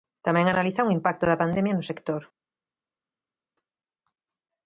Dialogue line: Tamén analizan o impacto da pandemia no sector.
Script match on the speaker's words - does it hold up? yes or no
yes